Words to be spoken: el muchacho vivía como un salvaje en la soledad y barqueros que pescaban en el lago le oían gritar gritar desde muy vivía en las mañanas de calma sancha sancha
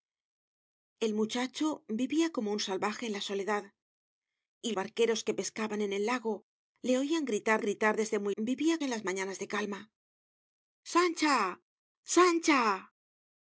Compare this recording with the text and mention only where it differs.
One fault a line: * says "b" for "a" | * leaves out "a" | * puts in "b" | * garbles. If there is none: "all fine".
all fine